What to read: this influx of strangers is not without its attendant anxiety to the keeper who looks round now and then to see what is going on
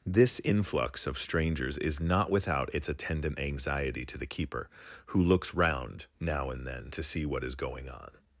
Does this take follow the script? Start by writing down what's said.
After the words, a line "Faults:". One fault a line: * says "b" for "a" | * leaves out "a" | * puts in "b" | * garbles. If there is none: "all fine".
this influx of strangers is not without its attendant anxiety to the keeper who looks round now and then to see what is going on
Faults:
all fine